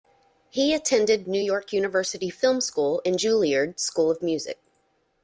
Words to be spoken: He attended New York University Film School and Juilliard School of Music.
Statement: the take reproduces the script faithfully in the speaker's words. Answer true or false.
true